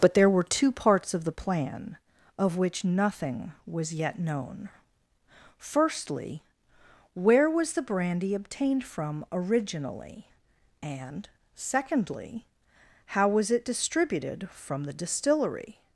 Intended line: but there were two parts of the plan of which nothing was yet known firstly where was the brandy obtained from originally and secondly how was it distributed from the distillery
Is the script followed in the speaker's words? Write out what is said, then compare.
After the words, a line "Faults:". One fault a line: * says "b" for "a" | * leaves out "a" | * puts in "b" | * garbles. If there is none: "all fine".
but there were two parts of the plan of which nothing was yet known firstly where was the brandy obtained from originally and secondly how was it distributed from the distillery
Faults:
all fine